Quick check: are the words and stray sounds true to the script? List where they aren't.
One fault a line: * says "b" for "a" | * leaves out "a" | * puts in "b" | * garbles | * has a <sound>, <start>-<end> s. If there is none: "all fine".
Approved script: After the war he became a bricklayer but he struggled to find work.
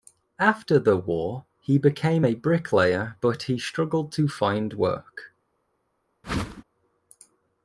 * has a whoosh, 6.2-6.6 s